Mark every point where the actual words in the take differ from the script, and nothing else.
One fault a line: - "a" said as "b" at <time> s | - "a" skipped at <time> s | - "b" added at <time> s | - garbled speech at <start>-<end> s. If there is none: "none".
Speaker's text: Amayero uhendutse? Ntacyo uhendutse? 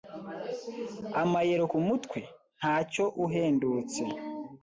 - "uhendutse" said as "kumutwe" at 1.7 s